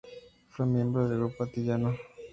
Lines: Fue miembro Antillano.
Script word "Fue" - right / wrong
right